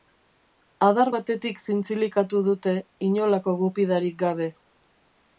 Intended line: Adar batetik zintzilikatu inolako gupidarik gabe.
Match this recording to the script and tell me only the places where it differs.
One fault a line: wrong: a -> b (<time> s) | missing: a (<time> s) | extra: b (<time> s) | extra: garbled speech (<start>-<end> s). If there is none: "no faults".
extra: dute (2.5 s)